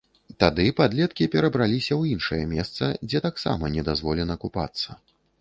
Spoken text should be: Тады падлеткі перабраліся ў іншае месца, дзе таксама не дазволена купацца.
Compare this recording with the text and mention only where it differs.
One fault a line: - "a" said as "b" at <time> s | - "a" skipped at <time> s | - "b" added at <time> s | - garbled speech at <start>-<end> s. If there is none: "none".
none